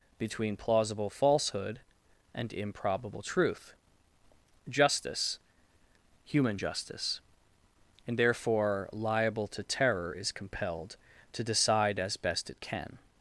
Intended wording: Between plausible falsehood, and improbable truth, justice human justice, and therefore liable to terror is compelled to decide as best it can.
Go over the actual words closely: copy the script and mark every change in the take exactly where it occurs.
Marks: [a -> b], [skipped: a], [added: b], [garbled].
Between plausible falsehood, and improbable truth, justice human justice, and therefore liable to terror is compelled to decide as best it can.